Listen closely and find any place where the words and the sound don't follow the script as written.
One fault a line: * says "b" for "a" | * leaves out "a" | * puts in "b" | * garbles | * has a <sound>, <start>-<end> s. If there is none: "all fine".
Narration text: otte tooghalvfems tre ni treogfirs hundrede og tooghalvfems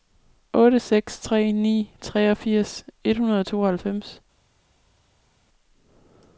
* says "seks" for "tooghalvfems"
* puts in "et"